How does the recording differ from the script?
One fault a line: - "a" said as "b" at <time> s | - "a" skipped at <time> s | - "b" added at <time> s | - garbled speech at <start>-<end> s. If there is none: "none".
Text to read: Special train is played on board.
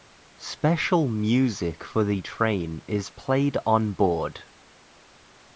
- "music for the" added at 1.1 s